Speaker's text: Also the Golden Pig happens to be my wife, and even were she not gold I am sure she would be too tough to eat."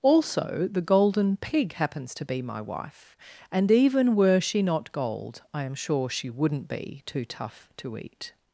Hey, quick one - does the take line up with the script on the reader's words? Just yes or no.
no